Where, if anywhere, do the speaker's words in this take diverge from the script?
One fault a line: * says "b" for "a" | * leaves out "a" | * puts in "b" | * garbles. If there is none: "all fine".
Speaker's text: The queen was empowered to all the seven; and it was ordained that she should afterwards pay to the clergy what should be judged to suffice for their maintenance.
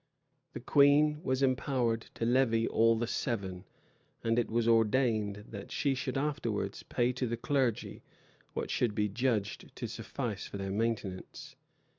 * puts in "levy"